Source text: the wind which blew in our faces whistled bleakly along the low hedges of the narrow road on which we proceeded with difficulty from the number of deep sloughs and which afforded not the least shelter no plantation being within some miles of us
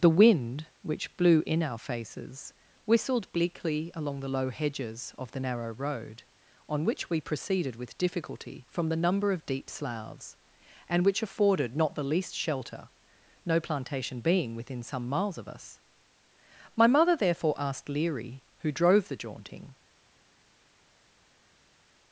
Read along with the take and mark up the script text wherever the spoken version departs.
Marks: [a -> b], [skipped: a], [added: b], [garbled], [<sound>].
the wind which blew in our faces whistled bleakly along the low hedges of the narrow road on which we proceeded with difficulty from the number of deep sloughs and which afforded not the least shelter no plantation being within some miles of us [added: my mother therefore asked leary who drove the jaunting]